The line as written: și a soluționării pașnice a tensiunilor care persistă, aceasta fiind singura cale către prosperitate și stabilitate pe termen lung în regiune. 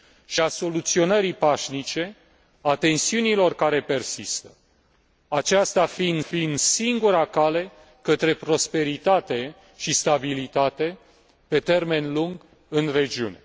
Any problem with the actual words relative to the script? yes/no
yes